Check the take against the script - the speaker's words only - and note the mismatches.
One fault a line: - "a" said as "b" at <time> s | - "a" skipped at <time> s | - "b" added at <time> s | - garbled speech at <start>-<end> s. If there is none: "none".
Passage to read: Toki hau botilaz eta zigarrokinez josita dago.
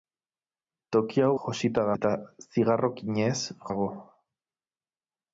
- "botilaz" said as "josita" at 1.4 s
- "josita" skipped at 3.4 s